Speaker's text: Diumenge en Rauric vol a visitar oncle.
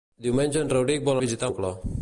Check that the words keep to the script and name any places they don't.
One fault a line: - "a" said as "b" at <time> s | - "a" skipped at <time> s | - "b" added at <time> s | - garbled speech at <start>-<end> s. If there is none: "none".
none